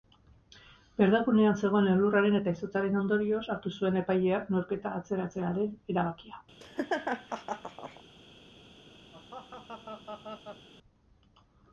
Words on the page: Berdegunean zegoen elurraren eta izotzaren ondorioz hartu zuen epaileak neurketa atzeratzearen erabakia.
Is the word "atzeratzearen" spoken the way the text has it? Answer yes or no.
yes